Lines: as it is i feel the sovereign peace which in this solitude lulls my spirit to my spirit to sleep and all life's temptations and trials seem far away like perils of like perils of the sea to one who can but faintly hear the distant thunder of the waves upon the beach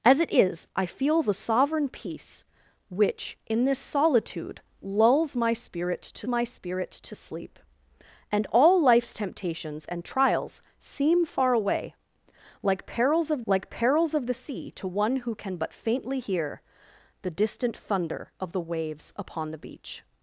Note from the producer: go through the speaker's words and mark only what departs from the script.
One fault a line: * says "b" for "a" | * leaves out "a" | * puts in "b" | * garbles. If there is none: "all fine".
all fine